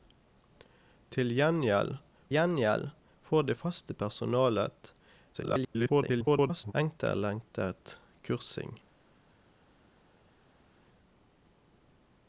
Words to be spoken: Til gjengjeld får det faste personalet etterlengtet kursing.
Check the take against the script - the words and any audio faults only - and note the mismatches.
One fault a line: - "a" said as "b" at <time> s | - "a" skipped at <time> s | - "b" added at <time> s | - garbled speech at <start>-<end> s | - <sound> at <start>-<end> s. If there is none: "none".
- "gjengjeld" added at 2.3 s
- garbled speech at 5.3-6.7 s